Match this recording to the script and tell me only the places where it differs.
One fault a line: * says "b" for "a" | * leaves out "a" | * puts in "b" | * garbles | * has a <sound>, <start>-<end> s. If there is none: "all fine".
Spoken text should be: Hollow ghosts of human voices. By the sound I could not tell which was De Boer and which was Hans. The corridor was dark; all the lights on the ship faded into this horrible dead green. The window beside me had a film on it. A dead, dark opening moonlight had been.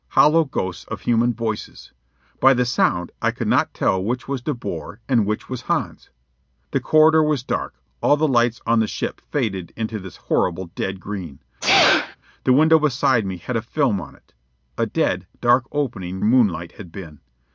* has a sneeze, 11.6-12.2 s